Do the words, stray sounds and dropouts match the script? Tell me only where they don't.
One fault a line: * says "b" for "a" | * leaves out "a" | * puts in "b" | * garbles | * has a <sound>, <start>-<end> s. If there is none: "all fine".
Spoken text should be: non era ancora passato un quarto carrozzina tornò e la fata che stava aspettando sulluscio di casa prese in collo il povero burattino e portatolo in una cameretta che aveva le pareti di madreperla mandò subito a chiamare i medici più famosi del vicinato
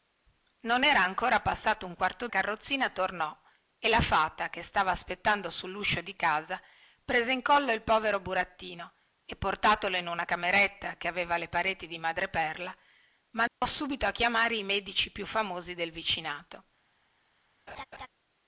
* has a dropout, 13.5-13.6 s
* has a laugh, 17.7-18.1 s